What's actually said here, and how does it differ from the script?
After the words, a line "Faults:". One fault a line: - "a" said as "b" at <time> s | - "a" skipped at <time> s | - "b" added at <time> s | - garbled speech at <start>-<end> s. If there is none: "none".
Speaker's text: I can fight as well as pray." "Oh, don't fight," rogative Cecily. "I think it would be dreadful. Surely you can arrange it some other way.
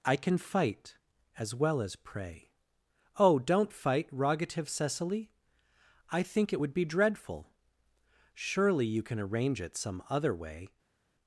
I can fight as well as pray." "Oh, don't fight," rogative Cecily. "I think it would be dreadful. Surely you can arrange it some other way.
Faults:
none